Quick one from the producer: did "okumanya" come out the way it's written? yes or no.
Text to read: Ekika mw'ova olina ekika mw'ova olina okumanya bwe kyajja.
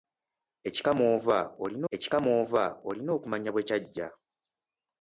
yes